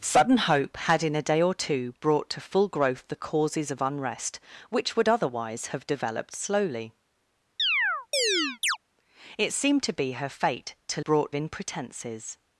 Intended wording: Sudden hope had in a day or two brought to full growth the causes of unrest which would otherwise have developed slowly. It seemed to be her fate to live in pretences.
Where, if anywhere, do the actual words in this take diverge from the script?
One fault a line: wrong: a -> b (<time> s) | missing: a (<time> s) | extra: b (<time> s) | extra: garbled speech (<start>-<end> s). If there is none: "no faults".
wrong: live -> brought (11.0 s)